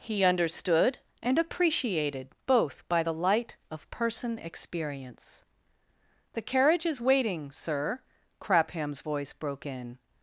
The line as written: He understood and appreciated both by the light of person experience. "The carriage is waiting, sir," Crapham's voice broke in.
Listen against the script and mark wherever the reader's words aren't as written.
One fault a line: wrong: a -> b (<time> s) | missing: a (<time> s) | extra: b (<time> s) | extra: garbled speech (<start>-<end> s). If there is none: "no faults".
no faults